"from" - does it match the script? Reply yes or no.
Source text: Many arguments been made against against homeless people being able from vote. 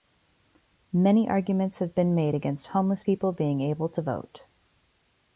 no